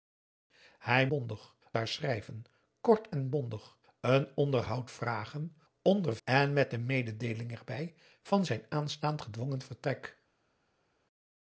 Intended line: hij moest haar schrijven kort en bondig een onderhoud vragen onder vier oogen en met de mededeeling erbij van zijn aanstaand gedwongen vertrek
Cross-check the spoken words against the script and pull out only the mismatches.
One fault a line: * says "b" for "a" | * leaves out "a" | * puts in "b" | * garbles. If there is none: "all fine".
* says "bondig" for "moest"
* leaves out "vier oogen"